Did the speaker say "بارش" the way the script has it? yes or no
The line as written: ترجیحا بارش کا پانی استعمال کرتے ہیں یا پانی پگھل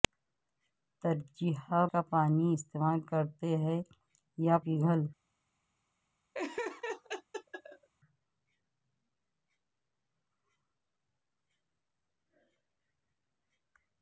no